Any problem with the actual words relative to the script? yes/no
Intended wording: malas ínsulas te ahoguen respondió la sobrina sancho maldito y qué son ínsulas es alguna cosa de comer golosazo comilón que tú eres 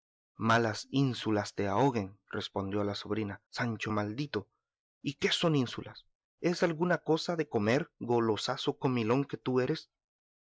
no